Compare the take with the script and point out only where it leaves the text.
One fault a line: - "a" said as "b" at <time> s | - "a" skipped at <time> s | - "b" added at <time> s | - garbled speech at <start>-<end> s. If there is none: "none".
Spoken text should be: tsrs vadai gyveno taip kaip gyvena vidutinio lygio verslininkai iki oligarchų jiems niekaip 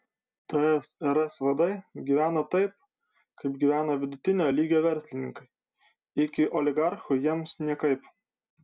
none